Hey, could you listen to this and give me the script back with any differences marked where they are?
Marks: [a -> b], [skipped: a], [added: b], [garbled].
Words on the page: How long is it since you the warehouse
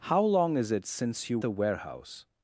How long is it since you the warehouse